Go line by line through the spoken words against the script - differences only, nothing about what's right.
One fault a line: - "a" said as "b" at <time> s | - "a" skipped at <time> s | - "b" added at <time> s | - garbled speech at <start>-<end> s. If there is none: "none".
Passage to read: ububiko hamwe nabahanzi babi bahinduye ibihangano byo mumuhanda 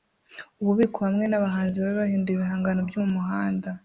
none